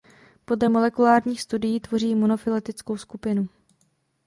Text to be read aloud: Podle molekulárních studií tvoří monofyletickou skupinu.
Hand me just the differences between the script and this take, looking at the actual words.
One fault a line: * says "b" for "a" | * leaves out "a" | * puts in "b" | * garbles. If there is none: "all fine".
all fine